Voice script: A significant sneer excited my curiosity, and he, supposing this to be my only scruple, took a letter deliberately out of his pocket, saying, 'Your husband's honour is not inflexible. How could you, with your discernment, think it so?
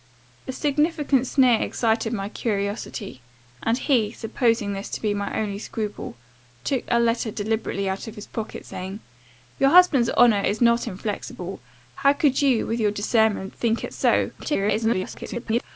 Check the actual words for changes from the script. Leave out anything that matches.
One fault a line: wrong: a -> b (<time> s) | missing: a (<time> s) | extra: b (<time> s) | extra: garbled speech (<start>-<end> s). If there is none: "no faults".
extra: garbled speech (14.4-15.6 s)